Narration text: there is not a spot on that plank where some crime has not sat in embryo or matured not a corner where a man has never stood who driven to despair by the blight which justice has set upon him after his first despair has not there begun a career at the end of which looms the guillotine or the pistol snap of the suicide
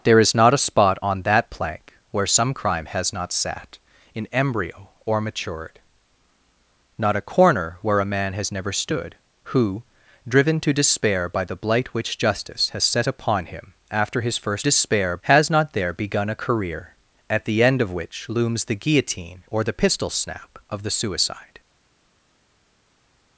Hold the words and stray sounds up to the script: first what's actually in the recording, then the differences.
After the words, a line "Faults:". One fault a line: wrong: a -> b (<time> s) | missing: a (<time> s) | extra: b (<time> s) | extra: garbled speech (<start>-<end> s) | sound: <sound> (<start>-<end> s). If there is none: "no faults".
there is not a spot on that plank where some crime has not sat in embryo or matured not a corner where a man has never stood who driven to despair by the blight which justice has set upon him after his first despair has not there begun a career at the end of which looms the guillotine or the pistol snap of the suicide
Faults:
no faults